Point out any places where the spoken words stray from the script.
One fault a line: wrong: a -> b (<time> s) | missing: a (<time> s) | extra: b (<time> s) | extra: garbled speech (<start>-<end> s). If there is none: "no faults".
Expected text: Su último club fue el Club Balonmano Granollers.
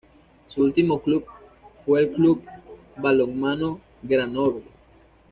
no faults